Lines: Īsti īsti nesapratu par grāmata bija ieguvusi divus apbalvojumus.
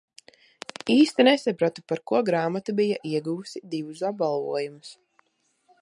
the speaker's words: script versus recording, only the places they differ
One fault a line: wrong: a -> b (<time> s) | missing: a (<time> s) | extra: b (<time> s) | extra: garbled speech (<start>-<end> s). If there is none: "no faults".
missing: īsti (1.2 s)
extra: ko (2.1 s)